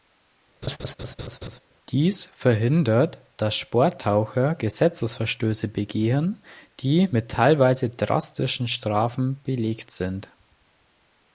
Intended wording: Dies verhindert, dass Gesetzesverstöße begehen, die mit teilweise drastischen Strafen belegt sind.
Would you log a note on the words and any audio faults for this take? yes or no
yes